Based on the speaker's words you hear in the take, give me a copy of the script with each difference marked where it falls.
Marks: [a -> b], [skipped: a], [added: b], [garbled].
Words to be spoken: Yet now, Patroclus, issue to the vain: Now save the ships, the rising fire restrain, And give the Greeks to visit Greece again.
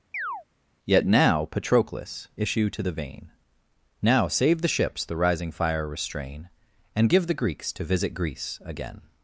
Yet now, Patroclus, issue to the vain: Now save the ships, the rising fire restrain, And give the Greeks to visit Greece again.